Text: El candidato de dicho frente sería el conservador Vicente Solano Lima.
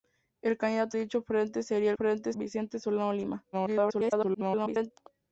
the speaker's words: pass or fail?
fail